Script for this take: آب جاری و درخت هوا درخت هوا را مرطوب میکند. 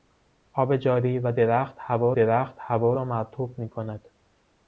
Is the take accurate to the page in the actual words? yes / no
yes